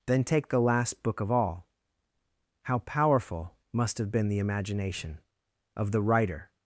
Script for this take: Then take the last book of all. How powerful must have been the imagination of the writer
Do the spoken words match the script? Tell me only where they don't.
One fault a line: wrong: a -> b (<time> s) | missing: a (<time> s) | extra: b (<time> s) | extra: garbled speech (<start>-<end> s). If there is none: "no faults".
no faults